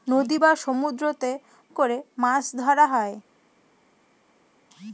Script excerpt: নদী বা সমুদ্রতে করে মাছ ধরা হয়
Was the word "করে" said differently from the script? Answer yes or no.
no